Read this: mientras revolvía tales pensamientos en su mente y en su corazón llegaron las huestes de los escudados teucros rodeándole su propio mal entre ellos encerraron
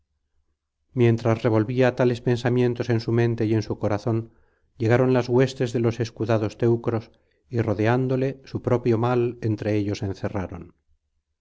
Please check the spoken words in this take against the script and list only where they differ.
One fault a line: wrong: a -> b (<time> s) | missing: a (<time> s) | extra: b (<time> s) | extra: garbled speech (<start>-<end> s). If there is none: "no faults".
extra: y (7.5 s)